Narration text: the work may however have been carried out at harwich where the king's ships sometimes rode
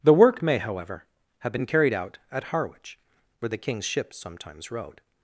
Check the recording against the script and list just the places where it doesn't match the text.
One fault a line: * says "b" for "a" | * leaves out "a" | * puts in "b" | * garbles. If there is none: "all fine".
all fine